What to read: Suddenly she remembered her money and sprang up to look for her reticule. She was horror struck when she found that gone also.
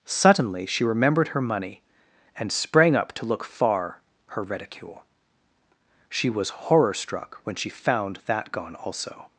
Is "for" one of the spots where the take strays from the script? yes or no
yes